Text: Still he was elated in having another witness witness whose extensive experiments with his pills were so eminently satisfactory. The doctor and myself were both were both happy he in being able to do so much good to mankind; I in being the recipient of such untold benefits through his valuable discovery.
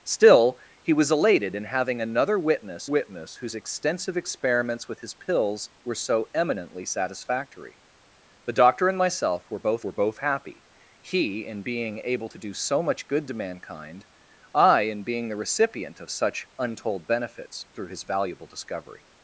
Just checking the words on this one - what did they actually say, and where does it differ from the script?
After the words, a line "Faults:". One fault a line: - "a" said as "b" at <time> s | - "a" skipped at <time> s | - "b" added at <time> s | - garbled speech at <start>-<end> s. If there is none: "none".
Still he was elated in having another witness witness whose extensive experiments with his pills were so eminently satisfactory. The doctor and myself were both were both happy he in being able to do so much good to mankind; I in being the recipient of such untold benefits through his valuable discovery.
Faults:
none